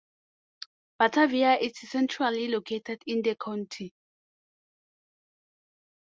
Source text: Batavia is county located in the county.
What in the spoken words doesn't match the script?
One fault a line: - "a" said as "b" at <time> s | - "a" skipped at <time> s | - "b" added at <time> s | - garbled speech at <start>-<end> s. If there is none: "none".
- "county" said as "centrally" at 1.8 s